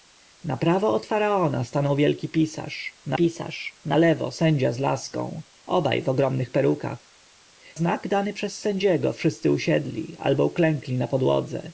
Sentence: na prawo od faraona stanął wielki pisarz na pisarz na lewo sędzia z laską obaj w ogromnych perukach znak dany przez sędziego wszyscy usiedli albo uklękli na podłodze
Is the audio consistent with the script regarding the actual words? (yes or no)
yes